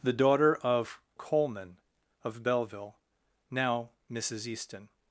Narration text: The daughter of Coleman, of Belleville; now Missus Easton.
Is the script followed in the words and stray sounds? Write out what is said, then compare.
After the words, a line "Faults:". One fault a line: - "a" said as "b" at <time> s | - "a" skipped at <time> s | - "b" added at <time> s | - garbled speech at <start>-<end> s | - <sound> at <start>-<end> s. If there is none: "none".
The daughter of Coleman, of Belleville; now Missus Easton.
Faults:
none